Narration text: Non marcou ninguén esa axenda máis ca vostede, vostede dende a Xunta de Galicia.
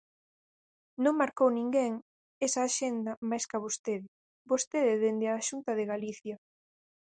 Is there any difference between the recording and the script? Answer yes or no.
no